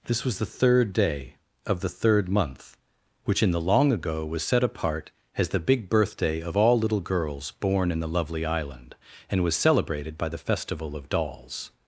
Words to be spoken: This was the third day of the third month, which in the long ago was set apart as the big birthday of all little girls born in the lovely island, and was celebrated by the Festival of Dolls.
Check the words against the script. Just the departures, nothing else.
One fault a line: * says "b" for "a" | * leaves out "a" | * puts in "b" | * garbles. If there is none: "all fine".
all fine